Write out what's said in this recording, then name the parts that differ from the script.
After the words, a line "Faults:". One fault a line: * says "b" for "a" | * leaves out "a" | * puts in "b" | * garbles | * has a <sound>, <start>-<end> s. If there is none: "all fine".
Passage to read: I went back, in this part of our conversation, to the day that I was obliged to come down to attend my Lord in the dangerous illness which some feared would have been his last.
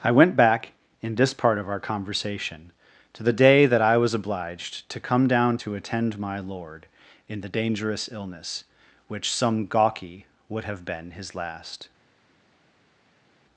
I went back, in this part of our conversation, to the day that I was obliged to come down to attend my Lord in the dangerous illness which some gawky would have been his last.
Faults:
* says "gawky" for "feared"